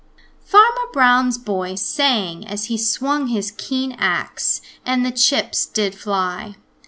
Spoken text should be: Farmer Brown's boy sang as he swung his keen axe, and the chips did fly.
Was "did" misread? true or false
false